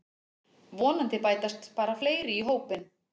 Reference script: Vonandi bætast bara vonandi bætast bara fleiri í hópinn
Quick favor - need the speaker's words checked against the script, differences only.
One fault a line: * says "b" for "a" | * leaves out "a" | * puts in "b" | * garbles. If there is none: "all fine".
* leaves out "vonandi bætast bara"